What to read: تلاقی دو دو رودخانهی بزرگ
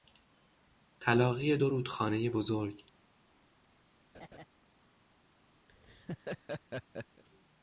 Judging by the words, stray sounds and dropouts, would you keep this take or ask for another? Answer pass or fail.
fail